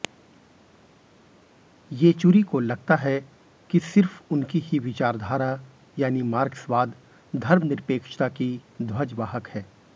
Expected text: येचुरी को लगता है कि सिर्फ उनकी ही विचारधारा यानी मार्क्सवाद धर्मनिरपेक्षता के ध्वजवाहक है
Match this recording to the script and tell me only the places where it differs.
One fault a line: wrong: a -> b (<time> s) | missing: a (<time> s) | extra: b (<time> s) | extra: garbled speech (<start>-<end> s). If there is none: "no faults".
wrong: के -> की (8.3 s)